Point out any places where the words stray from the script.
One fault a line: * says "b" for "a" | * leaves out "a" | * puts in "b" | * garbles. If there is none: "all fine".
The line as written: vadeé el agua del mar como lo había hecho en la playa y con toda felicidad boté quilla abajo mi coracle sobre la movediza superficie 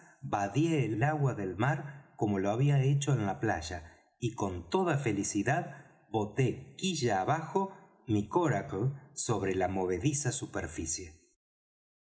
* puts in "el"